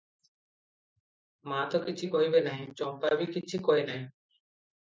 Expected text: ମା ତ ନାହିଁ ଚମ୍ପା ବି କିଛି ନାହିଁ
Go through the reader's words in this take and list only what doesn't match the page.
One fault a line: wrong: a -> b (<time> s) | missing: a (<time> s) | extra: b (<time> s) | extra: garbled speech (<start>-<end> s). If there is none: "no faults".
extra: କିଛି କହିବେ (1.8 s)
extra: କହେ (3.7 s)